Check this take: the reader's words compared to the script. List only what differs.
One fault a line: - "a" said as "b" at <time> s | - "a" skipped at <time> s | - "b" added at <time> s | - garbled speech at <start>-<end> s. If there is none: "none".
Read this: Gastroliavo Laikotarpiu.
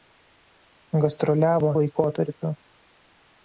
none